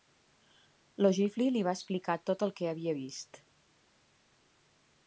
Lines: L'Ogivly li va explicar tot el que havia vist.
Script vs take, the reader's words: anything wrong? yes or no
no